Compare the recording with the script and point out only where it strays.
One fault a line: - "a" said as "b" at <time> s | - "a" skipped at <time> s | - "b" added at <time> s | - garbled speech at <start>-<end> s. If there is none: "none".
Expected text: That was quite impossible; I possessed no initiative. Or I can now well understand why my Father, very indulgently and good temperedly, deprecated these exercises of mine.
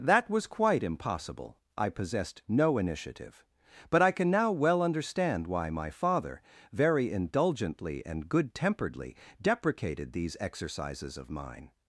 - "Or" said as "But" at 3.9 s